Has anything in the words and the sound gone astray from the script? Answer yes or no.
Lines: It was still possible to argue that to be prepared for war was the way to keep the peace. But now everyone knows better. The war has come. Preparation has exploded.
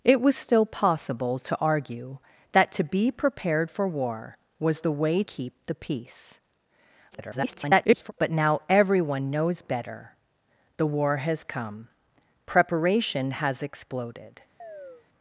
yes